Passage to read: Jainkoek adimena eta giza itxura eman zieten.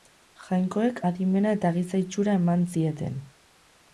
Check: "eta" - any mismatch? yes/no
no